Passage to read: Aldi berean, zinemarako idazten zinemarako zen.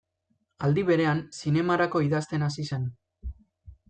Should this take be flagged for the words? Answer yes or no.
yes